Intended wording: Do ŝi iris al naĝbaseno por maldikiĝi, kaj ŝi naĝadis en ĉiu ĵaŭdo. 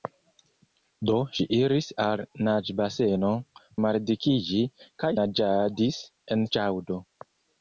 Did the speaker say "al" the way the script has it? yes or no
yes